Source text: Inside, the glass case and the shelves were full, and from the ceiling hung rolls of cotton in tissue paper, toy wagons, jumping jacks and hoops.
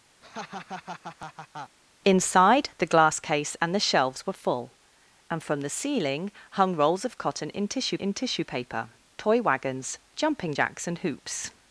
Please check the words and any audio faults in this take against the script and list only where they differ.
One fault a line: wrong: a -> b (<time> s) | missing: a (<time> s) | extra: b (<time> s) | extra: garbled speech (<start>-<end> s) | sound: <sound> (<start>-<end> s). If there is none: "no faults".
sound: laugh (0.2-1.8 s)
extra: in tissue (8.0 s)